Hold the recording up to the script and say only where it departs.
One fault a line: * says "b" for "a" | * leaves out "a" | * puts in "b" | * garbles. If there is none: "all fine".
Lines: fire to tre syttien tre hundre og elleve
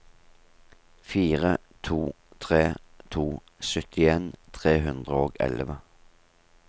* puts in "to"